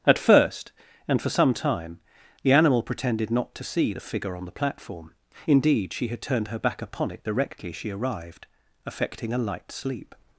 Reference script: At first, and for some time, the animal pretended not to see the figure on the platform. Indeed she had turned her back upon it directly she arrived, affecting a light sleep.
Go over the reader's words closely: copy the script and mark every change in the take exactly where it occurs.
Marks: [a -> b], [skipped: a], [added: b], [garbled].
At first, and for some time, the animal pretended not to see the figure on the platform. Indeed she had turned her back upon it directly she arrived, affecting a light sleep.